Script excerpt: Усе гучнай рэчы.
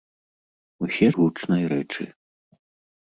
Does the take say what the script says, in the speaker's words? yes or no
yes